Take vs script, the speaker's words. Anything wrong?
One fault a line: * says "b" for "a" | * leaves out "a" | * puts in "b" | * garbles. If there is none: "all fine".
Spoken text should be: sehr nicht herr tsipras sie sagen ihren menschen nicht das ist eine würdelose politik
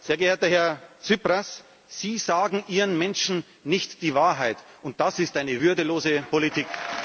* says "geehrter" for "nicht"
* puts in "die wahrheit und"